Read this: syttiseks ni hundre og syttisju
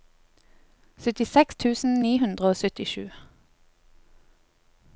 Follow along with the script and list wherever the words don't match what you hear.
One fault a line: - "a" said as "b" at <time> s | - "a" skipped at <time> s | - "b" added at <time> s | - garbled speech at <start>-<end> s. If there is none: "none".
- "tusen" added at 1.6 s